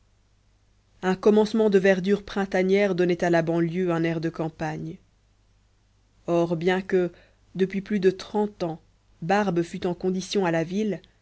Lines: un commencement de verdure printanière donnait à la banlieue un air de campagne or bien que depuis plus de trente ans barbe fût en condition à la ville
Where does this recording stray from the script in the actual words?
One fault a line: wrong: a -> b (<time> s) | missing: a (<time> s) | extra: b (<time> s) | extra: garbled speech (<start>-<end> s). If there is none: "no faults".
no faults